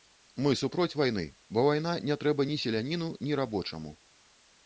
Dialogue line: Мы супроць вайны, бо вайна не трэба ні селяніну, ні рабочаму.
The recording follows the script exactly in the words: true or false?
true